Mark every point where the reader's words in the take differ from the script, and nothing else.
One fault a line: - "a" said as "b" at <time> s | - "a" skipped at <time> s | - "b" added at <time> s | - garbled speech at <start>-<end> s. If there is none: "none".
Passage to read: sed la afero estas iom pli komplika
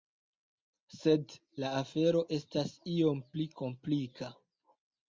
none